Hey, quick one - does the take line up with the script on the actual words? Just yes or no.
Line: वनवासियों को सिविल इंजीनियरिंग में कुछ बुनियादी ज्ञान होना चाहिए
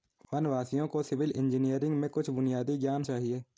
no